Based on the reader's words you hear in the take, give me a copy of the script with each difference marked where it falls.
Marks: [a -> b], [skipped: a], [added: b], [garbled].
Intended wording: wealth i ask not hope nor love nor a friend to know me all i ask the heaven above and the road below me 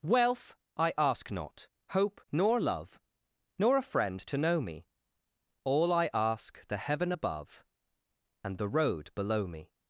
wealth i ask not hope nor love nor a friend to know me all i ask the heaven above and the road below me